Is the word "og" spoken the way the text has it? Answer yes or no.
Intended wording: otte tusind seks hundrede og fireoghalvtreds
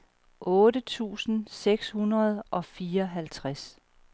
yes